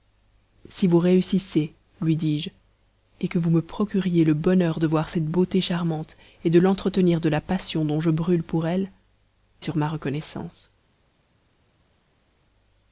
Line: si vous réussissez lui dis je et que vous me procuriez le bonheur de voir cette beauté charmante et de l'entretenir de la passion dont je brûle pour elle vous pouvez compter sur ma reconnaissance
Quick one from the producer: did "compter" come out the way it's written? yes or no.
no